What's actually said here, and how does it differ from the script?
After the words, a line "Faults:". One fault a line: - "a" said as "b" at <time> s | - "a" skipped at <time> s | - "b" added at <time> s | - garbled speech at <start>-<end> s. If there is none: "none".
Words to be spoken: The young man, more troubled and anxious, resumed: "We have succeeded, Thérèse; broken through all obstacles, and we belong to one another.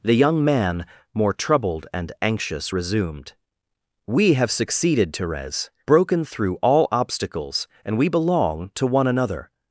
The young man, more troubled and anxious, resumed: "We have succeeded, Thérèse; broken through all obstacles, and we belong to one another.
Faults:
none